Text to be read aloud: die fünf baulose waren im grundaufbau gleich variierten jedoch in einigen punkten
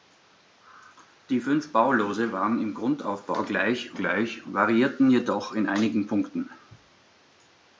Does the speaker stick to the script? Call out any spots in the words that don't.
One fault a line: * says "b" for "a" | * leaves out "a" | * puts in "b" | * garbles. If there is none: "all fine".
* puts in "gleich"